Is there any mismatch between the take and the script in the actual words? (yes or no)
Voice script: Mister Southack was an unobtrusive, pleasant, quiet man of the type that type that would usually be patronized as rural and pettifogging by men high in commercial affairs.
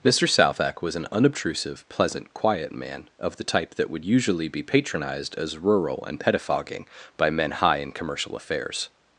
yes